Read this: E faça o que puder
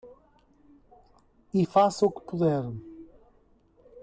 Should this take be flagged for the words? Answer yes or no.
no